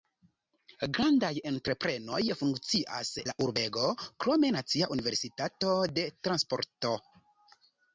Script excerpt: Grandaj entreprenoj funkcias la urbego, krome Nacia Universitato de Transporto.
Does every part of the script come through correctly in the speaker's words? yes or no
yes